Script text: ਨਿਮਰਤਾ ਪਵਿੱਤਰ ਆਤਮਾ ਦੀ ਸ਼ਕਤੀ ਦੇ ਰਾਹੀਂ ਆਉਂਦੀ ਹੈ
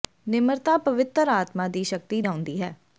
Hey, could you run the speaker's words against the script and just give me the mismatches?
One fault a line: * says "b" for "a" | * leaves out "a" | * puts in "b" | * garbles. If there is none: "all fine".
* leaves out "ਦੇ ਰਾਹੀਂ"